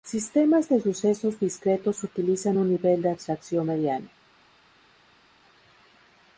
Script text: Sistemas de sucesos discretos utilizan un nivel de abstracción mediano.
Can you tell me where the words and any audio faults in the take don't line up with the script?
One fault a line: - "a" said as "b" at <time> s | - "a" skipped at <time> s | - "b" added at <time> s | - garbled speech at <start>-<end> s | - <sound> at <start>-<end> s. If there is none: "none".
none